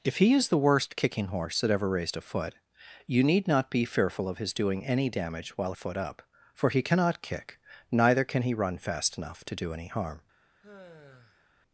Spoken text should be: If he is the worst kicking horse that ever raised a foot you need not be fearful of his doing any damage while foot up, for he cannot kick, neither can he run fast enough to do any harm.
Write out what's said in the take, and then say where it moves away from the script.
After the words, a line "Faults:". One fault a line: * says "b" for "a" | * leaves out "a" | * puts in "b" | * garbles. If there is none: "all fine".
If he is the worst kicking horse that ever raised a foot you need not be fearful of his doing any damage while foot up, for he cannot kick, neither can he run fast enough to do any harm.
Faults:
all fine